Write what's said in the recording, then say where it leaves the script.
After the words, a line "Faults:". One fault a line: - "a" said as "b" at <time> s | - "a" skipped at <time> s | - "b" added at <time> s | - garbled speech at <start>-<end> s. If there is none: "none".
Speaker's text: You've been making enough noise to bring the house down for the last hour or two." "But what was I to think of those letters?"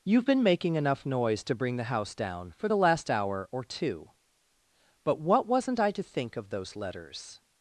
You've been making enough noise to bring the house down for the last hour or two." "But what wasn't I to think of those letters?"
Faults:
- "was" said as "wasn't" at 5.5 s